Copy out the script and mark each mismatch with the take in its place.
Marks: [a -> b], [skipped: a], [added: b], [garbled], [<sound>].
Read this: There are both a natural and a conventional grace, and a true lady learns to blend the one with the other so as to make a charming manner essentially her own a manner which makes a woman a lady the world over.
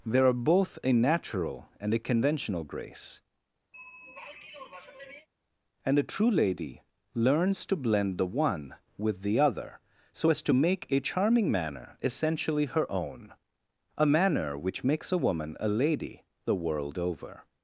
There are both a natural and a conventional grace, [throat clearing] and a true lady learns to blend the one with the other so as to make a charming manner essentially her own a manner which makes a woman a lady the world over.